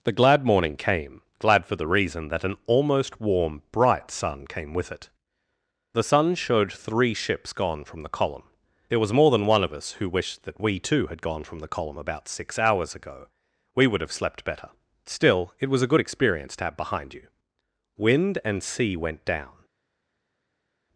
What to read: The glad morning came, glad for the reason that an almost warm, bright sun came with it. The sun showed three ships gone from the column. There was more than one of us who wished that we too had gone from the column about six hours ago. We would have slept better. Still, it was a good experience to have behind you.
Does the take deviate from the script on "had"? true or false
false